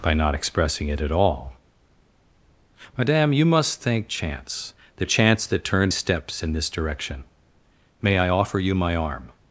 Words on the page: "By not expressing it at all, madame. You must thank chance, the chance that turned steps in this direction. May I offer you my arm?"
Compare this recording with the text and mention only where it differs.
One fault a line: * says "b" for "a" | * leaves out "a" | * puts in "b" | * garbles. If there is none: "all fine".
all fine